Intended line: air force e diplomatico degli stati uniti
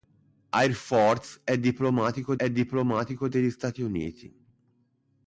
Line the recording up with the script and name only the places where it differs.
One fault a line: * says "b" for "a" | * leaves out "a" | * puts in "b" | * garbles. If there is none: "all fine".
* puts in "e diplomatico"